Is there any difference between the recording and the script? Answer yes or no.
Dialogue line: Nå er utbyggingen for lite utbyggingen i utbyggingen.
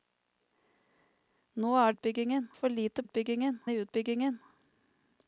no